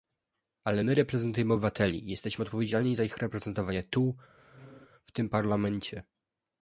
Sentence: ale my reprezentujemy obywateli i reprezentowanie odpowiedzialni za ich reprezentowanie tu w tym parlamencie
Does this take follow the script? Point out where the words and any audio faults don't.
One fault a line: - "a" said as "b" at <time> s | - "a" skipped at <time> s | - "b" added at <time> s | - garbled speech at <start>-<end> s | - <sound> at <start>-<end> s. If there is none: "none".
- "reprezentowanie" said as "jesteśmy" at 2.1 s
- squeak at 4.4-4.9 s